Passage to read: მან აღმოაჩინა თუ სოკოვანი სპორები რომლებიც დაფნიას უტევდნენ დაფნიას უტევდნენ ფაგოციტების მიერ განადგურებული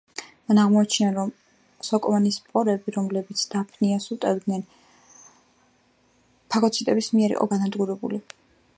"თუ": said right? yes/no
no